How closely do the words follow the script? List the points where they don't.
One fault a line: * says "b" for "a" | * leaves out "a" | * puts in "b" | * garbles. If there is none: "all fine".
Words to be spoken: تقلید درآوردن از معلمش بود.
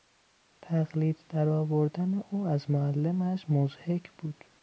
* puts in "او"
* puts in "مضحک"